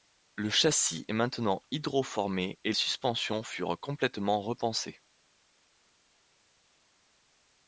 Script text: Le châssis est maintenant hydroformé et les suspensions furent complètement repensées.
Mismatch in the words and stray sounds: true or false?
true